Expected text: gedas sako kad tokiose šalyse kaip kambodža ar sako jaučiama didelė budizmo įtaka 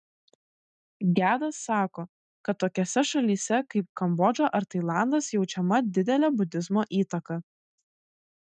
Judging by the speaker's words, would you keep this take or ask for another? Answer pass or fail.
fail